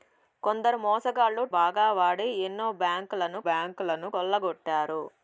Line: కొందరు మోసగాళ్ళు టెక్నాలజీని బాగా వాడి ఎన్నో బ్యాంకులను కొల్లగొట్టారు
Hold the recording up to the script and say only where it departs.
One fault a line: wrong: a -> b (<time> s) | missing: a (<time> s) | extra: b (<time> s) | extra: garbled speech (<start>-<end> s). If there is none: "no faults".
missing: టెక్నాలజీని (1.4 s)
extra: బ్యాంకులను (3.5 s)